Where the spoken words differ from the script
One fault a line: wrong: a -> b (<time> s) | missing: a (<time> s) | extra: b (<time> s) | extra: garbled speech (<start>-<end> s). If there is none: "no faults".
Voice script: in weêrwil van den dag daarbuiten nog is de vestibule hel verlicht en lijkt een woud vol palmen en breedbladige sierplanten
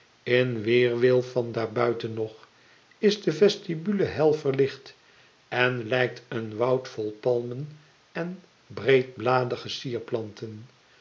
missing: den dag (1.5 s)